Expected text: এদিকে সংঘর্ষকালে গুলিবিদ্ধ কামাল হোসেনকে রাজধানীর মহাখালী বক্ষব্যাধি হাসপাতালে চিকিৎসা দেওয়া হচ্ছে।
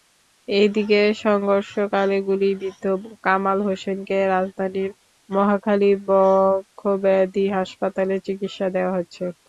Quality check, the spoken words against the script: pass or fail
pass